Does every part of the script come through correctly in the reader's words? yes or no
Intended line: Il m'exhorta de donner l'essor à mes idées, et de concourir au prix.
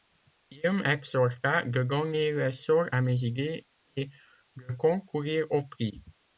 yes